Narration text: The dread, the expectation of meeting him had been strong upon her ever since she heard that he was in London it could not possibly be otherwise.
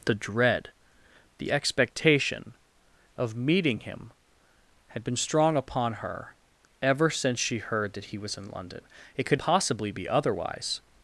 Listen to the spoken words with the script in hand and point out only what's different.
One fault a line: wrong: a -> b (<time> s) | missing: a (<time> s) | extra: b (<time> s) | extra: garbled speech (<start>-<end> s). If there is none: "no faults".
missing: not (9.4 s)